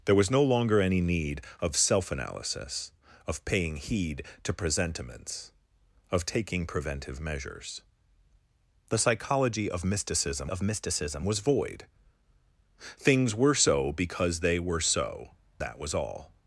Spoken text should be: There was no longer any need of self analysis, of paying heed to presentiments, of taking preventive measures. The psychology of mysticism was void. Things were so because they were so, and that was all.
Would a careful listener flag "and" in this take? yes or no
yes